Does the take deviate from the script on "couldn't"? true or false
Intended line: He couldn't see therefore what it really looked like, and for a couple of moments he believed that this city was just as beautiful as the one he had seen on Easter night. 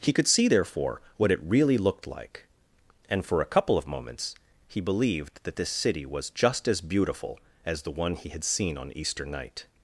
true